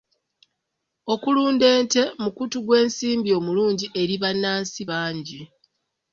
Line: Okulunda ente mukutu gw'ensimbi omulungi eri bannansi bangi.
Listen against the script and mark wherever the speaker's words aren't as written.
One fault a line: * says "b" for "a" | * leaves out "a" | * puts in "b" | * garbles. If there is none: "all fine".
all fine